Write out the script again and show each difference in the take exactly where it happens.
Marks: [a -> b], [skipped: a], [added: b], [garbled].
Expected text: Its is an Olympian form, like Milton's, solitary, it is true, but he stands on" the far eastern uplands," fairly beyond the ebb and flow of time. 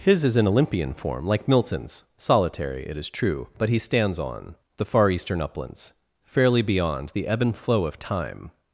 [Its -> His] is an Olympian form, like Milton's, solitary, it is true, but he stands on" the far eastern uplands," fairly beyond the ebb and flow of time.